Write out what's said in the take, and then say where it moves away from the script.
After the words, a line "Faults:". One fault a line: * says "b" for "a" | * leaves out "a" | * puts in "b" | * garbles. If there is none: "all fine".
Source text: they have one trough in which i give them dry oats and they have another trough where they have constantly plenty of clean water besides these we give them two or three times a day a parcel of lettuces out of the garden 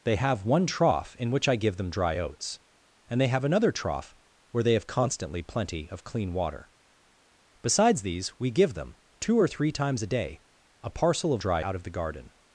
they have one trough in which i give them dry oats and they have another trough where they have constantly plenty of clean water besides these we give them two or three times a day a parcel of dry out of the garden
Faults:
* says "dry" for "lettuces"